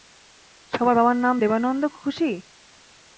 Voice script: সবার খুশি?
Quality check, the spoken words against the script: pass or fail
fail